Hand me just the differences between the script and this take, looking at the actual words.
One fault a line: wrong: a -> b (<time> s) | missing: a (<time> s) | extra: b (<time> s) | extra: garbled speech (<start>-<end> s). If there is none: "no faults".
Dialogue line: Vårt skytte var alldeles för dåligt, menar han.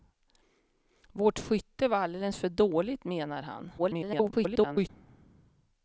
extra: garbled speech (3.8-4.9 s)